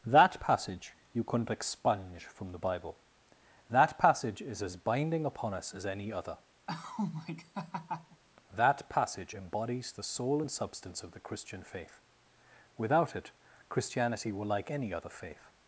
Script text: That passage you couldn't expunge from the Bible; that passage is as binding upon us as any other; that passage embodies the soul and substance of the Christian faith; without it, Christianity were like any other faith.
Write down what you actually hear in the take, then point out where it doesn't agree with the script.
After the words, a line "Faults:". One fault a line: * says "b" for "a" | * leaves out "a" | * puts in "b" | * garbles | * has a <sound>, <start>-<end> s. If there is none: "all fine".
That passage you couldn't expunge from the Bible; that passage is as binding upon us as any other; that passage embodies the soul and substance of the Christian faith; without it, Christianity were like any other faith.
Faults:
* has a laugh, 6.7-8.2 s